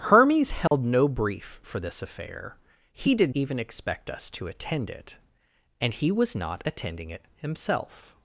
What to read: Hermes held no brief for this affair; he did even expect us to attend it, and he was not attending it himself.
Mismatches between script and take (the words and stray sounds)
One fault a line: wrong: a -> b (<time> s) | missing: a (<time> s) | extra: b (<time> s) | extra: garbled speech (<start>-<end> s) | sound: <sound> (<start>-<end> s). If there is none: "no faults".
sound: dropout (0.7-0.7 s)